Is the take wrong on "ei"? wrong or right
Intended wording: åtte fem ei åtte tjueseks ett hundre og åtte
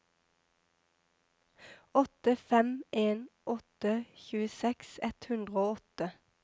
wrong